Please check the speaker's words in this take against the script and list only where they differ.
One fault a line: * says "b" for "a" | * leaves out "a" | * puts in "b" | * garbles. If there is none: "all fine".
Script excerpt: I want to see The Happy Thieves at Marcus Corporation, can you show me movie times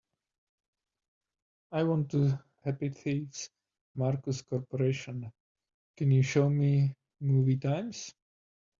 * leaves out "see The"
* leaves out "at"